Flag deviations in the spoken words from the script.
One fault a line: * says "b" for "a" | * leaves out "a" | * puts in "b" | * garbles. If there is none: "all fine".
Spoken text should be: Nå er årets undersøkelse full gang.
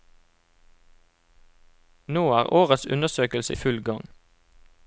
all fine